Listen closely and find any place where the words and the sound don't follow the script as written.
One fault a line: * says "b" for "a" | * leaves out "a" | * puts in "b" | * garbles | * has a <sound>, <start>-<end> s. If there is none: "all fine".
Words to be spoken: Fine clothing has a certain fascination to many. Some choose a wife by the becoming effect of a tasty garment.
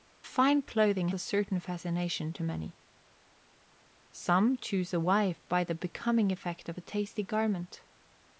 * leaves out "has"